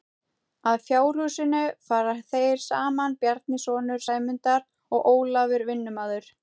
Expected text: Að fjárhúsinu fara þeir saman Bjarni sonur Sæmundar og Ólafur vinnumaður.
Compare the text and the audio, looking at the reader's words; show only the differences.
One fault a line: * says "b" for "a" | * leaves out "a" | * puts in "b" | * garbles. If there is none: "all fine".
all fine